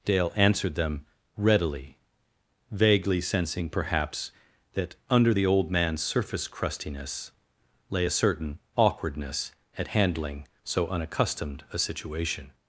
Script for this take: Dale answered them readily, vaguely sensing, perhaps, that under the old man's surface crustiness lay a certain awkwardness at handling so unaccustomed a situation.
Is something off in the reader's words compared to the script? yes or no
no